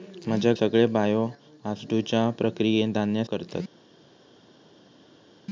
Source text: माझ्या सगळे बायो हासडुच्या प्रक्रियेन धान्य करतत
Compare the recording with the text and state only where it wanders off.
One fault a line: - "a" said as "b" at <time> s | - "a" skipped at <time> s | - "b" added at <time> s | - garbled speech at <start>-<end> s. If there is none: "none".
none